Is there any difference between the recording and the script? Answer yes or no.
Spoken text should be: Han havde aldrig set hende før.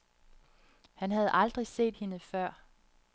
no